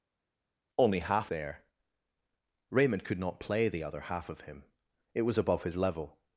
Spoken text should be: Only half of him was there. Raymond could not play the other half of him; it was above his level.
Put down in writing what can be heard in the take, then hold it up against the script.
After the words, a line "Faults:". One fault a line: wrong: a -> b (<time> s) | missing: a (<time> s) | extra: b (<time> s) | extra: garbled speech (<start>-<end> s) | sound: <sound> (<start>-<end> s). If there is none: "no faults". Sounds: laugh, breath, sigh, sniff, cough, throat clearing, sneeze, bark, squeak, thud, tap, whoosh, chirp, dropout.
Only half there. Raymond could not play the other half of him; it was above his level.
Faults:
missing: of him was (1.3 s)